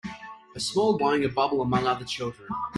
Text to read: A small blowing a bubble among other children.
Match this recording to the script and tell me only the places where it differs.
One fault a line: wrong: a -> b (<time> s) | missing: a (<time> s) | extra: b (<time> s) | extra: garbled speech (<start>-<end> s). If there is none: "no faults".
no faults